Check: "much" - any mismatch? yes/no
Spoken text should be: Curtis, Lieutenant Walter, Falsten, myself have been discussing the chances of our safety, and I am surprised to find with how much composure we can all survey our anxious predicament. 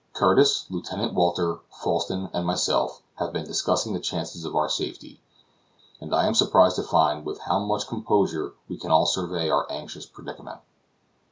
no